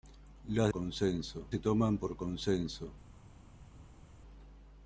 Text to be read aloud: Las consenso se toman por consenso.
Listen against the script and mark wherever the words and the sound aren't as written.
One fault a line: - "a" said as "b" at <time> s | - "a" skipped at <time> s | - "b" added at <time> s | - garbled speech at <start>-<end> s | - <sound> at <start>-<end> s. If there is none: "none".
none